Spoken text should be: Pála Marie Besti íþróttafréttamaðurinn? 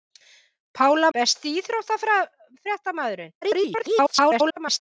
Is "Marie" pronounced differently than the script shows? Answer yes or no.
yes